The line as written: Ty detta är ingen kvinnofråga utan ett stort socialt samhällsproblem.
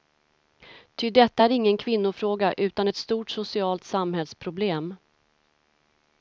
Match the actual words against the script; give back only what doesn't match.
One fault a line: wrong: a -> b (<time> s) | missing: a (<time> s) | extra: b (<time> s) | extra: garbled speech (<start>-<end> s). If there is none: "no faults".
no faults